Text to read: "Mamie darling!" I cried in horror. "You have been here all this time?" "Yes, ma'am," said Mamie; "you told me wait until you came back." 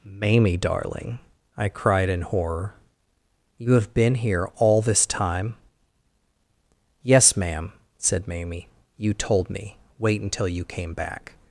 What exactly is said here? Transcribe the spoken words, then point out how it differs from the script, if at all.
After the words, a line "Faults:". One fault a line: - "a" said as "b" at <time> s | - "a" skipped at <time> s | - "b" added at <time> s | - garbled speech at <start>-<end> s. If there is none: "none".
"Mamie darling!" I cried in horror. "You have been here all this time?" "Yes, ma'am," said Mamie; "you told me wait until you came back."
Faults:
none